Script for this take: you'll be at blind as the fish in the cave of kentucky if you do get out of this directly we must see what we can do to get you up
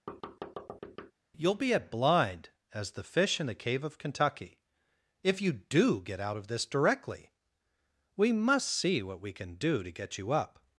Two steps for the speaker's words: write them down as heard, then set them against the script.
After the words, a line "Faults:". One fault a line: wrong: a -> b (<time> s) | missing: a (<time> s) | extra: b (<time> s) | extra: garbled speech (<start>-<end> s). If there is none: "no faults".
you'll be at blind as the fish in the cave of kentucky if you do get out of this directly we must see what we can do to get you up
Faults:
no faults